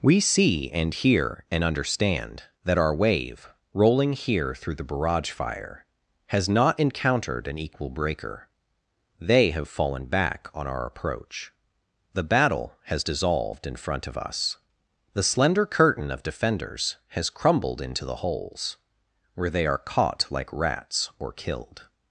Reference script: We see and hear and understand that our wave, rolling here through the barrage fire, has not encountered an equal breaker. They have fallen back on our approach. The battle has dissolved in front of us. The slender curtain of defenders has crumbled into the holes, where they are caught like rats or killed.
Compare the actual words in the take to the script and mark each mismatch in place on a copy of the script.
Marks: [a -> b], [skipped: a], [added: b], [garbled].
We see and hear and understand that our wave, rolling here through the barrage fire, has not encountered an equal breaker. They have fallen back on our approach. The battle has dissolved in front of us. The slender curtain of defenders has crumbled into the holes, where they are caught like rats or killed.